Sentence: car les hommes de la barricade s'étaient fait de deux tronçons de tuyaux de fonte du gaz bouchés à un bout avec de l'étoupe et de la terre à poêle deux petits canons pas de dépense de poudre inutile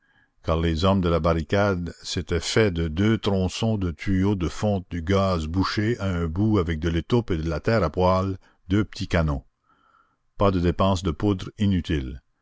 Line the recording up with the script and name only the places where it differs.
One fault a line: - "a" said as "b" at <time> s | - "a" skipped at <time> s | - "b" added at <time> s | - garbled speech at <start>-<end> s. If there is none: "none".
none